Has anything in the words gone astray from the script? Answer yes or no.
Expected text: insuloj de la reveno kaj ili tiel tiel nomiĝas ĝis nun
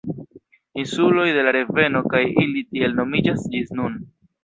yes